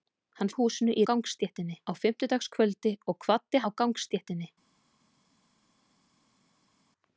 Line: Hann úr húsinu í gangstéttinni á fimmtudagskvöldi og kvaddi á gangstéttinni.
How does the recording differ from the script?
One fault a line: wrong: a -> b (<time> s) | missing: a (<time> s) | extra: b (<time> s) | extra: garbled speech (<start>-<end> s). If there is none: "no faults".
no faults